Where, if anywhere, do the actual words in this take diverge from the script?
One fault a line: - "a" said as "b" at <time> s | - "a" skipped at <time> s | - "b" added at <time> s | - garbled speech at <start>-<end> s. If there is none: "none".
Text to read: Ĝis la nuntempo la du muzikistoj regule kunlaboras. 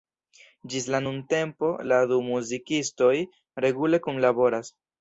none